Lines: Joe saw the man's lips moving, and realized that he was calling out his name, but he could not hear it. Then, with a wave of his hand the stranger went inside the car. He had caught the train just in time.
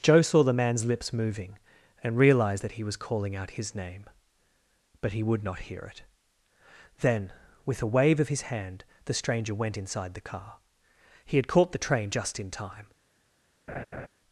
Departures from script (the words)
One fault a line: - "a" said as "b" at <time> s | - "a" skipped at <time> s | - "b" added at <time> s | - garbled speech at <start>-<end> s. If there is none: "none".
- "could" said as "would" at 5.2 s